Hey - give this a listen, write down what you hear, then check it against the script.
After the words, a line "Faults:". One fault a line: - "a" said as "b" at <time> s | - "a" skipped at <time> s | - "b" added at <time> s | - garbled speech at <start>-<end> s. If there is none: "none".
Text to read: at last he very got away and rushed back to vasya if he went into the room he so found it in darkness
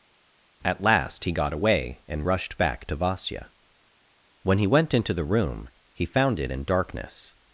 at last he got away and rushed back to vasya when he went into the room he found it in darkness
Faults:
- "very" skipped at 1.3 s
- "if" said as "when" at 4.4 s
- "so" skipped at 6.1 s